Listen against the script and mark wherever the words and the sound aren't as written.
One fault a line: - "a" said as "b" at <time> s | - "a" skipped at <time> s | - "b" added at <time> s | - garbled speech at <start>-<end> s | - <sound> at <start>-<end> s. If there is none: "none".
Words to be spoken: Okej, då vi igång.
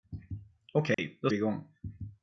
- dropout at 0.9-1.0 s